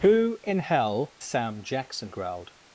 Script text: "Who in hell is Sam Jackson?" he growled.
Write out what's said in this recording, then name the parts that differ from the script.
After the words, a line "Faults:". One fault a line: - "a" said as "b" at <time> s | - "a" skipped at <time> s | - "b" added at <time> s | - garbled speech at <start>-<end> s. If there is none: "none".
"Who in hell Sam Jackson?" growled.
Faults:
- "is" skipped at 1.2 s
- "he" skipped at 2.1 s